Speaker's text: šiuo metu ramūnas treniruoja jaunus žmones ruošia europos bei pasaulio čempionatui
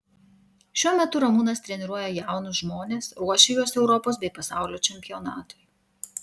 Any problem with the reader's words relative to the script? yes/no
yes